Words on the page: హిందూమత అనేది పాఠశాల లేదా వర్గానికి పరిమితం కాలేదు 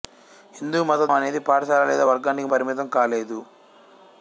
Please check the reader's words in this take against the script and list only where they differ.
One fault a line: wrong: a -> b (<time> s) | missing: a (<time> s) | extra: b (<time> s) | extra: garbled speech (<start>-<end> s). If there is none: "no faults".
no faults